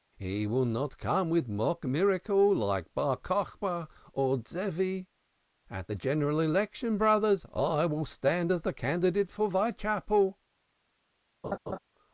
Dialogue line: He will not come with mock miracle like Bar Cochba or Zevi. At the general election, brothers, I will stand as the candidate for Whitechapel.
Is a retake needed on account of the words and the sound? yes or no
yes